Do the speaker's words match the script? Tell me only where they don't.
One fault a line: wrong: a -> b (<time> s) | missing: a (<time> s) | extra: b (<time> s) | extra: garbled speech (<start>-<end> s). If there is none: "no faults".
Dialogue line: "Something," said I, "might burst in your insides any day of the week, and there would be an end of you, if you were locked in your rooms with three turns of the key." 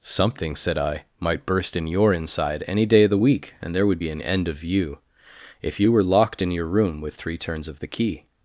wrong: insides -> inside (2.1 s)
wrong: rooms -> room (6.7 s)